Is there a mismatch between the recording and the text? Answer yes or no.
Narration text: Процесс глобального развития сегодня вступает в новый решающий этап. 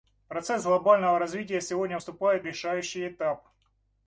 yes